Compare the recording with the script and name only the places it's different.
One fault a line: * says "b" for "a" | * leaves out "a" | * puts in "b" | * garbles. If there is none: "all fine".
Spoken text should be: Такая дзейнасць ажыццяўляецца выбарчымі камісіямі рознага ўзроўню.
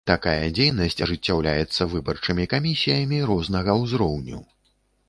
all fine